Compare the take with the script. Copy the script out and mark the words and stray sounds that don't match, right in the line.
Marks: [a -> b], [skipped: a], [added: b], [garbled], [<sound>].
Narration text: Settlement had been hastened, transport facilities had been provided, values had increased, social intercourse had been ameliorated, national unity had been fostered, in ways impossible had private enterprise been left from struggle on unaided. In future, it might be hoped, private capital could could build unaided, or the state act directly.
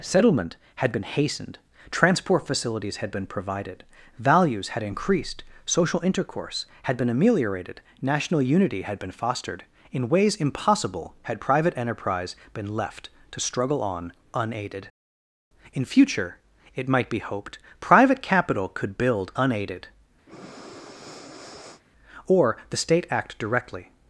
Settlement had been hastened, transport facilities had been provided, values had increased, social intercourse had been ameliorated, national unity had been fostered, in ways impossible had private enterprise been left [from -> to] struggle on unaided. In future, it might be hoped, private capital could [skipped: could] build unaided, [breath] or the state act directly.